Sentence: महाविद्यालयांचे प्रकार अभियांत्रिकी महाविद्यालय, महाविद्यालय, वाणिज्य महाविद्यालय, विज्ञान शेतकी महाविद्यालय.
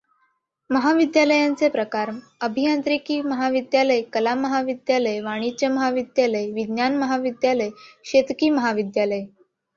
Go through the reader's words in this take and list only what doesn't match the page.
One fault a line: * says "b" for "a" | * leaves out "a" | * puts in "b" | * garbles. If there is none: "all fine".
* puts in "कला"
* puts in "महाविद्यालय"